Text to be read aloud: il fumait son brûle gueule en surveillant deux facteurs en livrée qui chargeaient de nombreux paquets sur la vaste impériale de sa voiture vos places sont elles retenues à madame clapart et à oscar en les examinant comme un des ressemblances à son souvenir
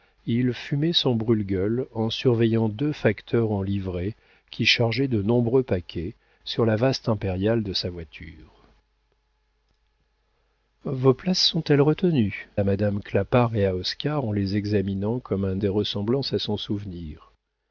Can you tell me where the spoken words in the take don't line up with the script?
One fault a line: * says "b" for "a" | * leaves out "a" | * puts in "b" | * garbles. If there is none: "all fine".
all fine